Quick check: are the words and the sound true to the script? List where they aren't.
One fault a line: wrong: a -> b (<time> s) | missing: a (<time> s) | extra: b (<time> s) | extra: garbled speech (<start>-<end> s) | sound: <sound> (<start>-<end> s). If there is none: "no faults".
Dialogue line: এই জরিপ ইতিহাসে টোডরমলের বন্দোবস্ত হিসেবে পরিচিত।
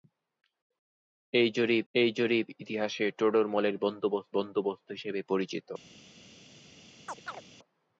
extra: এই জরিপ (1.9 s)
extra: বন্দোবস্ত (4.3 s)
sound: chirp (7.1-7.4 s)